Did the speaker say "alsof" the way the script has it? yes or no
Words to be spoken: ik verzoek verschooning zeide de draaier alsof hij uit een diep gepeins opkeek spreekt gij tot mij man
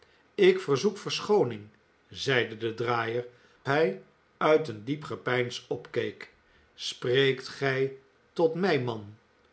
no